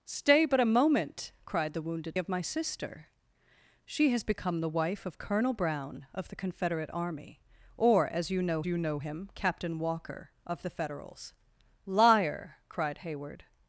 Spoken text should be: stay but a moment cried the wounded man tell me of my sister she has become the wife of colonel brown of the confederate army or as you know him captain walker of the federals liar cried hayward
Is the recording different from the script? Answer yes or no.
yes